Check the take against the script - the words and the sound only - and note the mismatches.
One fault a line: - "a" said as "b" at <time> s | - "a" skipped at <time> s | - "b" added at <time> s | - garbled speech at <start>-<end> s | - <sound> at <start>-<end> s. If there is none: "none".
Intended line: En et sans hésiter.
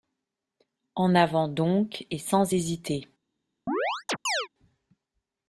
- "avant donc" added at 1.1 s
- chirp at 3.7-4.5 s